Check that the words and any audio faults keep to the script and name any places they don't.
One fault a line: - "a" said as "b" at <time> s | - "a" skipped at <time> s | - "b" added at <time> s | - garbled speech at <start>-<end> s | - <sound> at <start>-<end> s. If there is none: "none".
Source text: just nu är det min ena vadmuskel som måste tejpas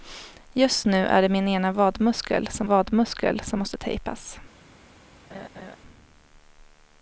- "vadmuskel som" added at 2.6 s
- laugh at 5.3-5.8 s